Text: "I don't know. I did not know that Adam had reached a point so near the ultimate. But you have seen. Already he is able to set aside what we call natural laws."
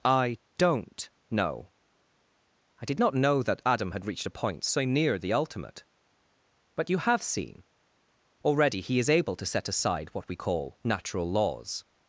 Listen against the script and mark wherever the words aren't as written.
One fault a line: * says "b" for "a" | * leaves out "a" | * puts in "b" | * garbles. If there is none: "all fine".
all fine